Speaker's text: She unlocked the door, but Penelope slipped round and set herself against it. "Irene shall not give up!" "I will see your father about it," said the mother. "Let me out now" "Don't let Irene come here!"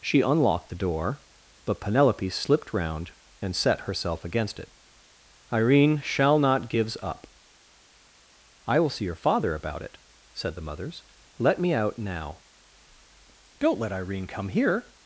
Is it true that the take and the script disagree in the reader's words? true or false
true